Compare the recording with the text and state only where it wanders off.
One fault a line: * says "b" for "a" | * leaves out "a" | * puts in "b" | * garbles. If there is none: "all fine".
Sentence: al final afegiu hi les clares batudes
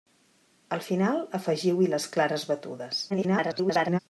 * garbles